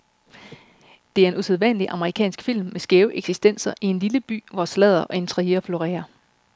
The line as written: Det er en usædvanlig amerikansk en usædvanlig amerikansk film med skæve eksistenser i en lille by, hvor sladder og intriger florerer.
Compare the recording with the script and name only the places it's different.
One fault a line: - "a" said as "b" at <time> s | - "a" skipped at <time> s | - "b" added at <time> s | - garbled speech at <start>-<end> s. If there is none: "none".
- "en usædvanlig amerikansk" skipped at 2.4 s